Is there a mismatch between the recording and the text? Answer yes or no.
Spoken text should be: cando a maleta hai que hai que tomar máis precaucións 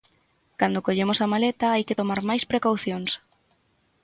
yes